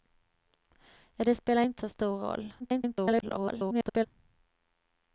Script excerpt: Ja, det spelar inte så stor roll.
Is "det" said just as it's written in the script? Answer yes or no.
yes